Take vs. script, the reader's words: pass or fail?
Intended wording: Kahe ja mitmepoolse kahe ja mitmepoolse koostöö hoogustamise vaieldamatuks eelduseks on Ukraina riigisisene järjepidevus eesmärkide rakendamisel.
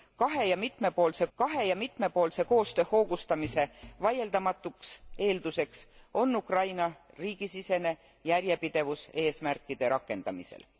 pass